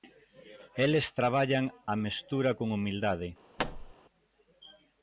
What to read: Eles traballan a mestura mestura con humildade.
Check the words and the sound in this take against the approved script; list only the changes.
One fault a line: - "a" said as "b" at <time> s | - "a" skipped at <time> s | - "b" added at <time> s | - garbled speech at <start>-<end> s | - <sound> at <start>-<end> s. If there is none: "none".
- "mestura" skipped at 2.5 s
- thud at 3.6-3.9 s